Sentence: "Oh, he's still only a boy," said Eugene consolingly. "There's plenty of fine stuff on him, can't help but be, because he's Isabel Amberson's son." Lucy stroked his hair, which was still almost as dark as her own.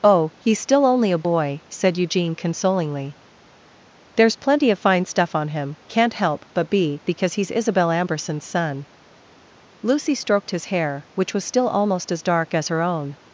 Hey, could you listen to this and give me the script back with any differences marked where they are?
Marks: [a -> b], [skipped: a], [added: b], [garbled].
"Oh, he's still only a boy," said Eugene consolingly. "There's plenty of fine stuff on him, can't help but be, because he's Isabel Amberson's son." Lucy stroked his hair, which was still almost as dark as her own.